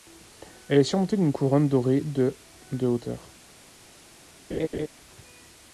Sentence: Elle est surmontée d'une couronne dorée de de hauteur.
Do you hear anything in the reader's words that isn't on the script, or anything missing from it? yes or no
no